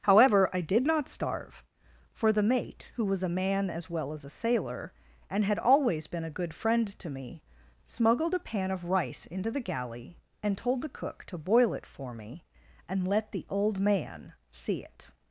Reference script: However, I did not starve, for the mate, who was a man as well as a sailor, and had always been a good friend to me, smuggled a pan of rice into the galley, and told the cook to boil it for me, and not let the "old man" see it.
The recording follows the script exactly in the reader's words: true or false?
false